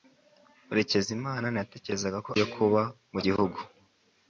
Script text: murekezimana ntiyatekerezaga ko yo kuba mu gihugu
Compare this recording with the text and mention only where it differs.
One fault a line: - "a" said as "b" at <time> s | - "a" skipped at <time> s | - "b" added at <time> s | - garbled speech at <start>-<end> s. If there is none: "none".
none